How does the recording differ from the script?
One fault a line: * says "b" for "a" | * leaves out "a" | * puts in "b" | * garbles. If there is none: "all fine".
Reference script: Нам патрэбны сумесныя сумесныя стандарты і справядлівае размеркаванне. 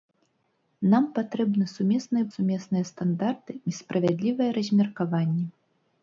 all fine